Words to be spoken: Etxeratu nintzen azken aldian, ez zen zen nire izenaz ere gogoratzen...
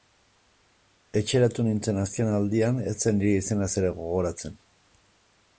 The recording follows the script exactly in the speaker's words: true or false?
false